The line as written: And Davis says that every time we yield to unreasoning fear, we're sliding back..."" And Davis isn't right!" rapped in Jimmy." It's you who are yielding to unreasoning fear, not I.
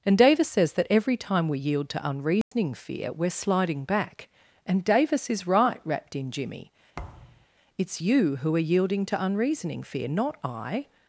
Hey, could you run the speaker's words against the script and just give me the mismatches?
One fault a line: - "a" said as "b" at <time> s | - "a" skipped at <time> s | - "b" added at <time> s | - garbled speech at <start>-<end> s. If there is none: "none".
- "isn't" said as "is" at 5.3 s